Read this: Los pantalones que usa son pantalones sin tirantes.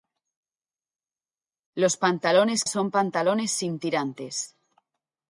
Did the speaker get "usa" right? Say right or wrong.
wrong